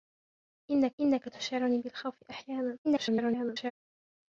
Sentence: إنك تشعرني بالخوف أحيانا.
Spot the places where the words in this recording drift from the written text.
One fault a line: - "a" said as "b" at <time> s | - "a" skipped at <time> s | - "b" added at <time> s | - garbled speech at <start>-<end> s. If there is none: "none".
- "إنك" added at 1.0 s
- garbled speech at 2.8-3.7 s